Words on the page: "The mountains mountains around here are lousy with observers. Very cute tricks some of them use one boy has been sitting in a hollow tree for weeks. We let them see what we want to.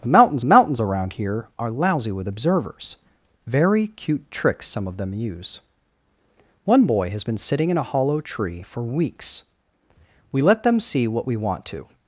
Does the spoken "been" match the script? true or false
true